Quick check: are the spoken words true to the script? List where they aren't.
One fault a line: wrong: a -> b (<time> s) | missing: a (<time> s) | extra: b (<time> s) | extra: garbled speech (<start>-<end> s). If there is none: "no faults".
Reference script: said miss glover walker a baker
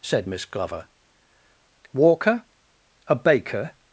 no faults